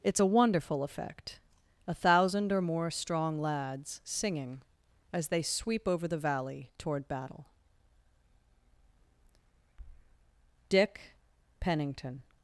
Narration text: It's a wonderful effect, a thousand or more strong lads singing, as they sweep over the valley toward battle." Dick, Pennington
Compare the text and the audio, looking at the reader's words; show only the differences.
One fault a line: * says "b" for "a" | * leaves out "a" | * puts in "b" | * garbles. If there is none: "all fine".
all fine